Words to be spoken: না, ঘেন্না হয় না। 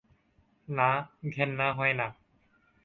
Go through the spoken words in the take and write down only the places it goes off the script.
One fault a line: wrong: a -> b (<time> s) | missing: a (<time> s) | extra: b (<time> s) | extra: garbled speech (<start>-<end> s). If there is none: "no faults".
no faults